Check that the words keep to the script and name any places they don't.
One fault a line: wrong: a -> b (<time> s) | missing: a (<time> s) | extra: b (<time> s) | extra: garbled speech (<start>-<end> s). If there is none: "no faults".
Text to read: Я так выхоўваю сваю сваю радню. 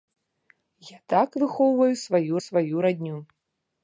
no faults